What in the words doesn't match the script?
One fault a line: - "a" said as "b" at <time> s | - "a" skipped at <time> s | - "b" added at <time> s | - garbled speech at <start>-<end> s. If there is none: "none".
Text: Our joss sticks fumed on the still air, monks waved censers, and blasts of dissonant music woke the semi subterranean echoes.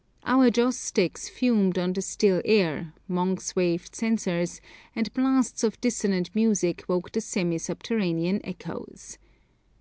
none